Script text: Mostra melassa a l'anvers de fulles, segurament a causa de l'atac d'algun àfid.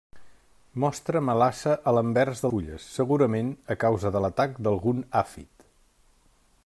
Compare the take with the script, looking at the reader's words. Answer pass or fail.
pass